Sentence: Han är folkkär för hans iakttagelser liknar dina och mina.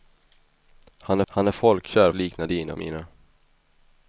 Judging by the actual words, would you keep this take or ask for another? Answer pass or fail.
fail